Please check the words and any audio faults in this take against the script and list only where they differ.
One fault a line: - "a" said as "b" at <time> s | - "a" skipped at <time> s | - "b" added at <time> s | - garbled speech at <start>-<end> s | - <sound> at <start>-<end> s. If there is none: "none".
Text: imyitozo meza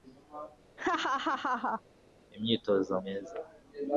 - laugh at 0.8-1.8 s